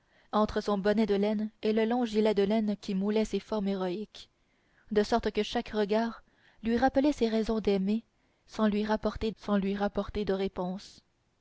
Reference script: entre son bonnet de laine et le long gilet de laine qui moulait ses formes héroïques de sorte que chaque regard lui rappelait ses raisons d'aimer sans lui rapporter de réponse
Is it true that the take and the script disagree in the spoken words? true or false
true